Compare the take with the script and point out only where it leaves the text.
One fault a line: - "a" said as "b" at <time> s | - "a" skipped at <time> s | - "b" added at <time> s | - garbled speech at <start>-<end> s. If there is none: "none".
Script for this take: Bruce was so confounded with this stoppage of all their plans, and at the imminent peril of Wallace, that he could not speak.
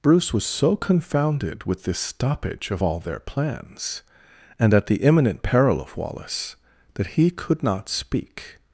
none